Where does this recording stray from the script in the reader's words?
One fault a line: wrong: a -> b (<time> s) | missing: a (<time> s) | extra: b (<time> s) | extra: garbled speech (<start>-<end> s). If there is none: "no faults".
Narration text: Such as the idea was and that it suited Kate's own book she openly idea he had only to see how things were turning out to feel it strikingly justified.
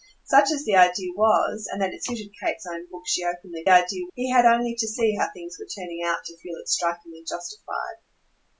no faults